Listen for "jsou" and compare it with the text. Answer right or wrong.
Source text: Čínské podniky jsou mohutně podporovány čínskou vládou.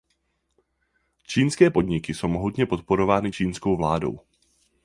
right